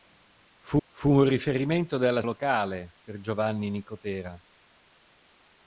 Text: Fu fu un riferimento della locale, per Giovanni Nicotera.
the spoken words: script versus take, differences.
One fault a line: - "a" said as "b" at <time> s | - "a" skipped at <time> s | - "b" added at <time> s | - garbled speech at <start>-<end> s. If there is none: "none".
none